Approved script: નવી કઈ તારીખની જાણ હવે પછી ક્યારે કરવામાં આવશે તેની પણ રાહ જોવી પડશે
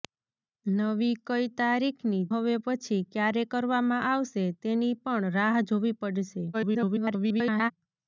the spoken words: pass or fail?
fail